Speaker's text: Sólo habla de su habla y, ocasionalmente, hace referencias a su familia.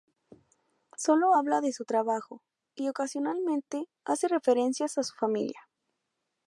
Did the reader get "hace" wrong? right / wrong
right